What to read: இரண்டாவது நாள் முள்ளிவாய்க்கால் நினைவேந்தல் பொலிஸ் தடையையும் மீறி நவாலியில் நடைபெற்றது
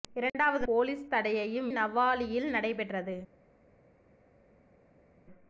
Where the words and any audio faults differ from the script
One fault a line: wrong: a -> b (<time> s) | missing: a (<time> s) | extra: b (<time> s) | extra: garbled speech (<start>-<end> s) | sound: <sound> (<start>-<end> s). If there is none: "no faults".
missing: நாள் முள்ளிவாய்க்கால் நினைவேந்தல் (0.7 s)
missing: மீறி (1.7 s)